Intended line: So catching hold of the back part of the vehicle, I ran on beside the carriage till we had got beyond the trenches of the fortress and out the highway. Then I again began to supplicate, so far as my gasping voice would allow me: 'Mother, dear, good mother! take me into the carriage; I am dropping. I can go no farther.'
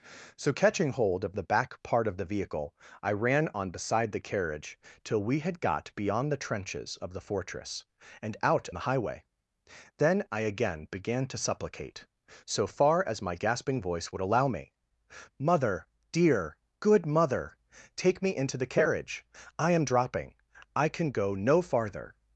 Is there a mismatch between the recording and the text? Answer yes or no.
no